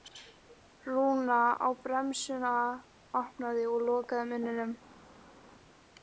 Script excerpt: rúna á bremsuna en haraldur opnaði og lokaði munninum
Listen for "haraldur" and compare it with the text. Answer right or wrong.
wrong